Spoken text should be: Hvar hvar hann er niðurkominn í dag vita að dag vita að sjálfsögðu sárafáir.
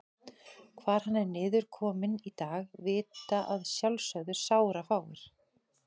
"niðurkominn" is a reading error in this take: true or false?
false